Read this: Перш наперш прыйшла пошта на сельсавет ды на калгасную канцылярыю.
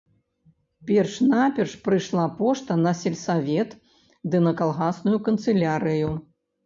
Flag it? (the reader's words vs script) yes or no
no